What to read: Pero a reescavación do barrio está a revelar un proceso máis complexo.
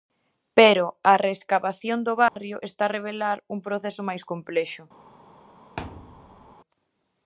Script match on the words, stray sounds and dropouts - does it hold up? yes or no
no